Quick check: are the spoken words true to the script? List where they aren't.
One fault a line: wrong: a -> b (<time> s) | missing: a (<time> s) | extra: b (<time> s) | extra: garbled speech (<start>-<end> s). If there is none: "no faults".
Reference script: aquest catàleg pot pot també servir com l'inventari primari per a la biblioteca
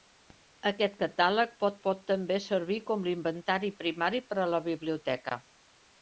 no faults